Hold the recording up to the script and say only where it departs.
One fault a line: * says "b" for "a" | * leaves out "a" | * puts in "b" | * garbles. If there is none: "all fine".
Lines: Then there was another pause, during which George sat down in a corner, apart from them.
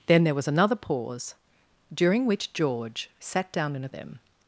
* leaves out "corner apart from"